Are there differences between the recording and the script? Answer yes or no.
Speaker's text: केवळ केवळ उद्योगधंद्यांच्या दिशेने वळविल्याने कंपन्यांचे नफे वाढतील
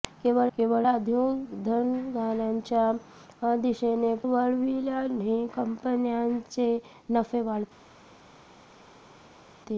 no